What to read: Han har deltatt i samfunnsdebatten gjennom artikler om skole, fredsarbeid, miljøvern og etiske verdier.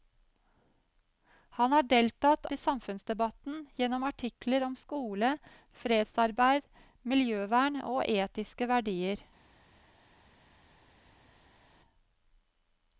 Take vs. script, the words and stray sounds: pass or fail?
pass